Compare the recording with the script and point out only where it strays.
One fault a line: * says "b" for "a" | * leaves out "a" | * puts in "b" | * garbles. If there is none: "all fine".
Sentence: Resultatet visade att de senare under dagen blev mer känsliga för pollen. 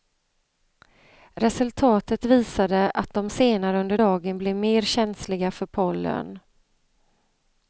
all fine